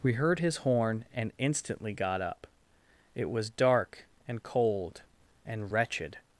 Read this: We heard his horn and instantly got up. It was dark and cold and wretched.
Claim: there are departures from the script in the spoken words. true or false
false